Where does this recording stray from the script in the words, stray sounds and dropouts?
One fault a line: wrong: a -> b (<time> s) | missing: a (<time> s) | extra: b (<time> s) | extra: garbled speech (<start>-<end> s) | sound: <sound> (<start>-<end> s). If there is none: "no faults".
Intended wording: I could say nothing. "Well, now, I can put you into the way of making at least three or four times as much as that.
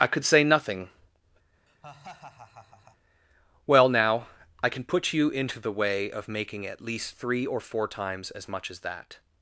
sound: laugh (1.7-3.0 s)